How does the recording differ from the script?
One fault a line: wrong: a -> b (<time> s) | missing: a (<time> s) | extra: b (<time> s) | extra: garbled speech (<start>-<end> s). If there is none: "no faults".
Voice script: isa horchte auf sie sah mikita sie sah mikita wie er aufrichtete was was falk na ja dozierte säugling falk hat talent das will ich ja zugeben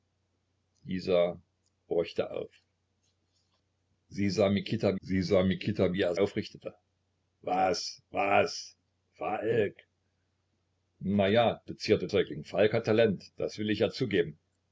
no faults